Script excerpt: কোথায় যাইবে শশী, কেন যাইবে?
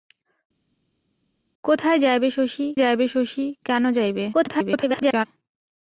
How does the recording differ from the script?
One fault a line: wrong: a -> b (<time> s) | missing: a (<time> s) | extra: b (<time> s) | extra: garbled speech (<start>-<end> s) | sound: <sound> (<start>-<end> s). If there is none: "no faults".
extra: যাইবে শশী (2.8 s)
extra: garbled speech (4.3-5.3 s)